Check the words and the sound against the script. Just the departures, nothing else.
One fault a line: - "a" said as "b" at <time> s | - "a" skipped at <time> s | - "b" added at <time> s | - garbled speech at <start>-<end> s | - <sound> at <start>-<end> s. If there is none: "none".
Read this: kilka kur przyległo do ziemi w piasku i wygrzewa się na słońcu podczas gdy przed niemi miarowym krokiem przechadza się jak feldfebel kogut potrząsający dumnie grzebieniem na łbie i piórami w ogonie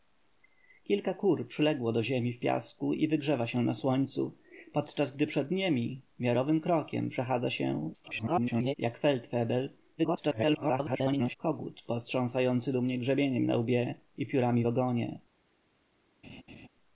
- garbled speech at 8.0-8.7 s
- garbled speech at 10.0-11.4 s
- laugh at 16.2-16.7 s